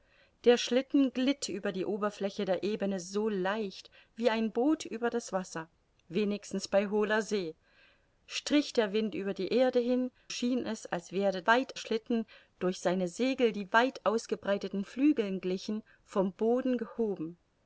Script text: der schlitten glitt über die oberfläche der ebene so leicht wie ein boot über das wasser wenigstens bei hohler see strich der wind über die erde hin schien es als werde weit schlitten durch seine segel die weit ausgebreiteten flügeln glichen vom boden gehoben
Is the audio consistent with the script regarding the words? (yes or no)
yes